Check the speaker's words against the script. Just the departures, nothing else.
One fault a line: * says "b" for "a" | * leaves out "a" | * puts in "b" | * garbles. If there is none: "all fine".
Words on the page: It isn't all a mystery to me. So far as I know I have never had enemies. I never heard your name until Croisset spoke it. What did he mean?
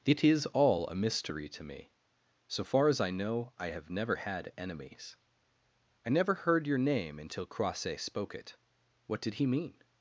* says "is" for "isn't"